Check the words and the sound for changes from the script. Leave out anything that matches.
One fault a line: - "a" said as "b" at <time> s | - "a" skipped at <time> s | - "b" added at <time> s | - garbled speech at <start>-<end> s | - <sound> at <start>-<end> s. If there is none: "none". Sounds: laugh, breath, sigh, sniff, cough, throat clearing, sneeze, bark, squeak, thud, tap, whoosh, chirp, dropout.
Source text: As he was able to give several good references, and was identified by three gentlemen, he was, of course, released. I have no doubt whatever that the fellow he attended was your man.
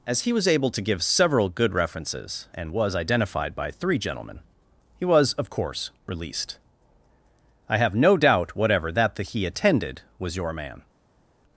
- "fellow" skipped at 9.2 s